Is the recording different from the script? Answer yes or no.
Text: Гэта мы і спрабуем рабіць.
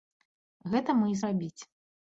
yes